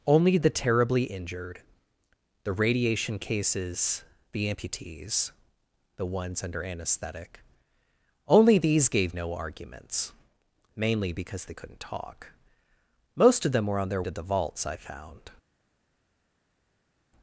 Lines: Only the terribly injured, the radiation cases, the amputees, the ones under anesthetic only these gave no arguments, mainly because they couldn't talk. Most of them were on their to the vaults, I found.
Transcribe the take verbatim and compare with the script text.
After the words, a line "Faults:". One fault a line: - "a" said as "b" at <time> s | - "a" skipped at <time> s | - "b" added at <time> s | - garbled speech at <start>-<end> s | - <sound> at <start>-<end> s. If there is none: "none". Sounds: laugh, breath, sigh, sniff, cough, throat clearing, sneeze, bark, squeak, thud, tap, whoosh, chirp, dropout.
Only the terribly injured, the radiation cases, the amputees, the ones under anesthetic only these gave no arguments, mainly because they couldn't talk. Most of them were on their to the vaults, I found.
Faults:
none